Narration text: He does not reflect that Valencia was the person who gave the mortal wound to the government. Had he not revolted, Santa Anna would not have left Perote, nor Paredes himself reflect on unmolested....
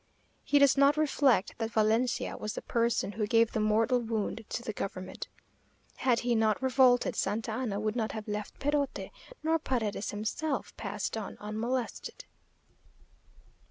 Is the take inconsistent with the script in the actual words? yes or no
yes